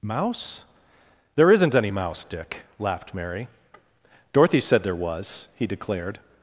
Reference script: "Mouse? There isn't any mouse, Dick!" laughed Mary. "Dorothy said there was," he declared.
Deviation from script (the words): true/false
false